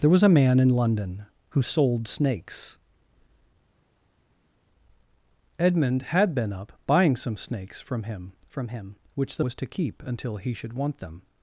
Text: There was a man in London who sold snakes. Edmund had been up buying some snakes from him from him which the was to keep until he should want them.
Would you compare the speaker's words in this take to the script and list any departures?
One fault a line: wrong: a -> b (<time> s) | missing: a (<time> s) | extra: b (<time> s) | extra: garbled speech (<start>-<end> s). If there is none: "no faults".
no faults